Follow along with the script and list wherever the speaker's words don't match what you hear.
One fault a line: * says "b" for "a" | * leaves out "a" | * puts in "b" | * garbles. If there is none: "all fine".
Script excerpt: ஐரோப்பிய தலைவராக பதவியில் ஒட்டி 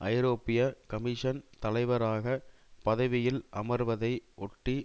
* puts in "கமிஷன்"
* puts in "அமர்வதை"